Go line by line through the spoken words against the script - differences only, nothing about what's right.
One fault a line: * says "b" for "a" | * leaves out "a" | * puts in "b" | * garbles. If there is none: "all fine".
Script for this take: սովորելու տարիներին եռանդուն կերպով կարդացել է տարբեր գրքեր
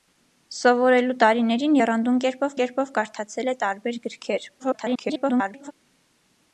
* puts in "կերպով"
* garbles